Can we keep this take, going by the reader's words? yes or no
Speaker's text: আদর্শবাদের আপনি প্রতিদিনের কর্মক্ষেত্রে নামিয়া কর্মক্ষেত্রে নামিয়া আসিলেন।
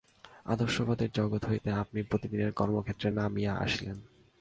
no